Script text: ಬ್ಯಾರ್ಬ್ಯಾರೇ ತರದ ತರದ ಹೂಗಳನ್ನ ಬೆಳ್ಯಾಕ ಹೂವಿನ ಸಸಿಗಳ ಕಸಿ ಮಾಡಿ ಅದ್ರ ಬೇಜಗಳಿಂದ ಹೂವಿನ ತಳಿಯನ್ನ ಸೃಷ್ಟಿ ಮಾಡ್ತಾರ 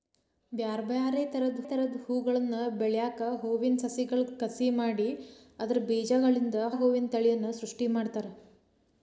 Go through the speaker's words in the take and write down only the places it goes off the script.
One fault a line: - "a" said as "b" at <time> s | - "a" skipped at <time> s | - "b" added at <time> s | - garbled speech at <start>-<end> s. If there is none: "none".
none